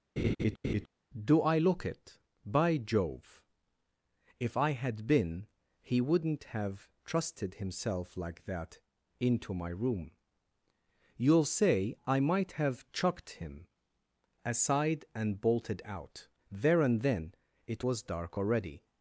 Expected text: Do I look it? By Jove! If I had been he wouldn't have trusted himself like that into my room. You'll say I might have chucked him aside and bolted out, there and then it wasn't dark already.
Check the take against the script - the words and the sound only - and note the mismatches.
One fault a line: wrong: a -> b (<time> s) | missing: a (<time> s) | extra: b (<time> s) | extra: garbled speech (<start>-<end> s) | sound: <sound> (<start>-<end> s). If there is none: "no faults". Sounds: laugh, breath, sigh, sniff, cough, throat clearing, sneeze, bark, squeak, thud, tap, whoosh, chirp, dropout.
sound: laugh (0.2-0.9 s)
wrong: wasn't -> was (17.8 s)